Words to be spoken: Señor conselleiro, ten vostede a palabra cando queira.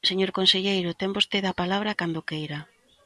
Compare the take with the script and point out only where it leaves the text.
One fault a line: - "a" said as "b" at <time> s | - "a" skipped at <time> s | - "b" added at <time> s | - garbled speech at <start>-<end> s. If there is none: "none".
none